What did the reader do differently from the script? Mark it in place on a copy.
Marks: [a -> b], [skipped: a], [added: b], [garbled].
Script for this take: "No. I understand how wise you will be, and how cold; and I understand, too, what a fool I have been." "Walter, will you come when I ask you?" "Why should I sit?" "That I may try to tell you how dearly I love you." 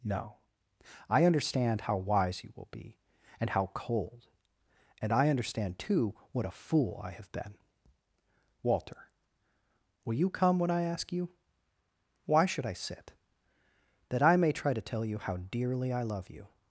"No. I understand how wise you will be, and how cold; and I understand, too, what a fool I have been." "Walter, will you come when I ask you?" "Why should I sit?" "That I may try to tell you how dearly I love you."